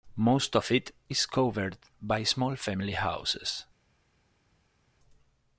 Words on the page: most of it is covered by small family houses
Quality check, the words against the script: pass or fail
pass